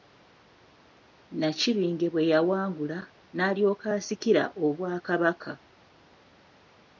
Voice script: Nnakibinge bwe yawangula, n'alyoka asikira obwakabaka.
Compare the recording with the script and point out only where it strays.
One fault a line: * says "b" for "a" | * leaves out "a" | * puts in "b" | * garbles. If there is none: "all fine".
all fine